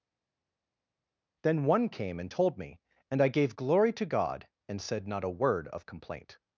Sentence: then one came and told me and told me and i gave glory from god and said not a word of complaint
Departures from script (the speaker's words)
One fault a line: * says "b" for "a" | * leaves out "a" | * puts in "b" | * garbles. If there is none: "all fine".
* leaves out "told me and"
* says "to" for "from"